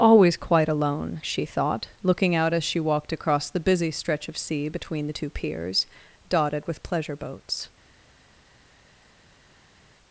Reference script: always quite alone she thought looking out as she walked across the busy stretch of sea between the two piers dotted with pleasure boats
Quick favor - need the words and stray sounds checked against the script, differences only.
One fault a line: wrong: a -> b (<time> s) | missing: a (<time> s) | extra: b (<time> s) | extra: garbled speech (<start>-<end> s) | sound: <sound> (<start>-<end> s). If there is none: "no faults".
no faults